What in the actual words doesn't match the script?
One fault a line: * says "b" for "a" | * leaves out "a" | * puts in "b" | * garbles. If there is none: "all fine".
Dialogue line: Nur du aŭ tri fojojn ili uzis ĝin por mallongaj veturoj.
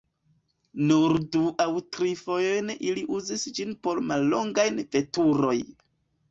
all fine